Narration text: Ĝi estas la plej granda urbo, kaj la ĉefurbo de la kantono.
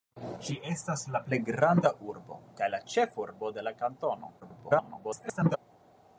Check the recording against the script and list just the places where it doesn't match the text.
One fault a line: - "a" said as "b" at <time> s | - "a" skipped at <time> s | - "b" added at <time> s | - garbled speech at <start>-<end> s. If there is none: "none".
- garbled speech at 4.4-5.6 s